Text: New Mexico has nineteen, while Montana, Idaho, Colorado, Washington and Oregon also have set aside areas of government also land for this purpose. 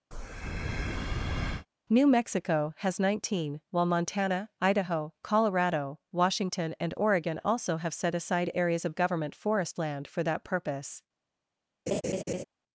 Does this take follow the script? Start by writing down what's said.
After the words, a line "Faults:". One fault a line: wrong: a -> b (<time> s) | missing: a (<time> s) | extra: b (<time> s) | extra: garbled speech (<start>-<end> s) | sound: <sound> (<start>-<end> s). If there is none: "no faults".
New Mexico has nineteen, while Montana, Idaho, Colorado, Washington and Oregon also have set aside areas of government forest land for that purpose.
Faults:
sound: breath (0.1-1.7 s)
wrong: also -> forest (9.3 s)
wrong: this -> that (10.2 s)
sound: laugh (11.9-12.4 s)